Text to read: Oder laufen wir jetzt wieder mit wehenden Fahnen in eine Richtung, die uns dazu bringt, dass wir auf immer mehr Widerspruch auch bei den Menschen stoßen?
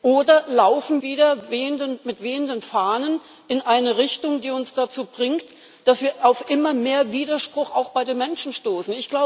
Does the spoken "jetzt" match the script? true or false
false